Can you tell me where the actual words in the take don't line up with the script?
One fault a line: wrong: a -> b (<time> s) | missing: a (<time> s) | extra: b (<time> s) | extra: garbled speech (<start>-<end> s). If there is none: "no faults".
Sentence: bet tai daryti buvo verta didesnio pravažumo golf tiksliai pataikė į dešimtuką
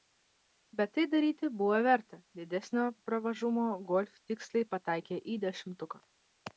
no faults